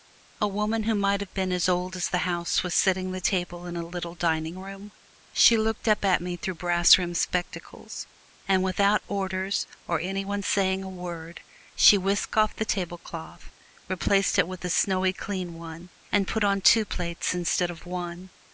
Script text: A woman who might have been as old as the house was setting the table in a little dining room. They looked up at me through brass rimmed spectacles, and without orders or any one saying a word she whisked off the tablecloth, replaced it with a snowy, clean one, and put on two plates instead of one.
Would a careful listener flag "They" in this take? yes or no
yes